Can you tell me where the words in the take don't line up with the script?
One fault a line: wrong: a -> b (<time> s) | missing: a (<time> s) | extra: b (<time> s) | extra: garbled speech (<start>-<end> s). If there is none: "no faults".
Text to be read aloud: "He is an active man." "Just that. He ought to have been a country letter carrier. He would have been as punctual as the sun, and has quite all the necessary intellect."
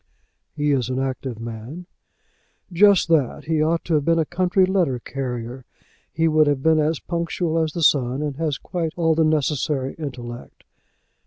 no faults